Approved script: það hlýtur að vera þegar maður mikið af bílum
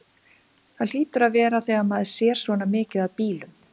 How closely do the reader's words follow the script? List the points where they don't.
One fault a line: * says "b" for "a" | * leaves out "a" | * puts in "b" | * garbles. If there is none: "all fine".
* puts in "sér svona"